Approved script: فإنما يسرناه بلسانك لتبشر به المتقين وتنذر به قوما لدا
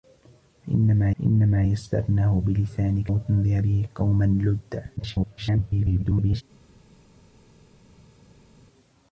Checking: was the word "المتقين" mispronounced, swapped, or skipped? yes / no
yes